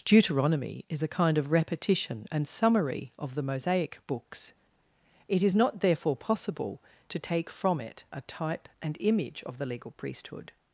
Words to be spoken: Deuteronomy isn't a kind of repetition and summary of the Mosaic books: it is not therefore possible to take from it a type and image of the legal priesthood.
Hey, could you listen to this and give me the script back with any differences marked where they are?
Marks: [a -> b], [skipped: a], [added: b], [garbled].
Deuteronomy [isn't -> is] a kind of repetition and summary of the Mosaic books: it is not therefore possible to take from it a type and image of the legal priesthood.